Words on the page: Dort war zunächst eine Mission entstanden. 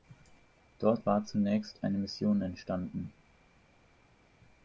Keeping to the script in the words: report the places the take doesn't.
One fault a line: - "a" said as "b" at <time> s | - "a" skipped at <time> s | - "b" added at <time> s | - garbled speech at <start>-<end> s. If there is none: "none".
none